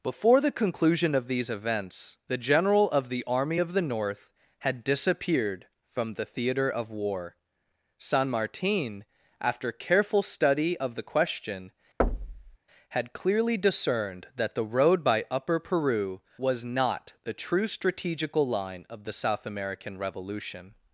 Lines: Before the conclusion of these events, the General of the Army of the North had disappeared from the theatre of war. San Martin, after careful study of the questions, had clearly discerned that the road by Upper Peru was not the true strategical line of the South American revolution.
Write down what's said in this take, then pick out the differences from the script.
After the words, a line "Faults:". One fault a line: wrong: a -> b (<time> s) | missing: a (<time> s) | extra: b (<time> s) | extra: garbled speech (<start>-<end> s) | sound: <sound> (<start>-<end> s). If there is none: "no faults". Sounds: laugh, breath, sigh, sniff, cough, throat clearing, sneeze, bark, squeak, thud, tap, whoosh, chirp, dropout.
Before the conclusion of these events, the General of the Army of the North had disappeared from the theatre of war. San Martin, after careful study of the question, had clearly discerned that the road by Upper Peru was not the true strategical line of the South American revolution.
Faults:
wrong: questions -> question (11.0 s)
sound: thud (12.0-12.6 s)